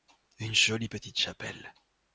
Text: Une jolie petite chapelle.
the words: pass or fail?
pass